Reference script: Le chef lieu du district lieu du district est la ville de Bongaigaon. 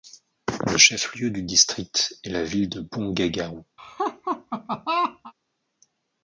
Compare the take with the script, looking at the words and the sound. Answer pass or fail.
fail